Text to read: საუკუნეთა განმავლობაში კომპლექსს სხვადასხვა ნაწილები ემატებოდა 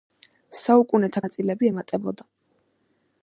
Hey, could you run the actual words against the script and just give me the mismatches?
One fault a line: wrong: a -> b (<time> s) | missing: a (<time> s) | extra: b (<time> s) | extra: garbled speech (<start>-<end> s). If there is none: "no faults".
missing: განმავლობაში კომპლექსს სხვადასხვა (1.2 s)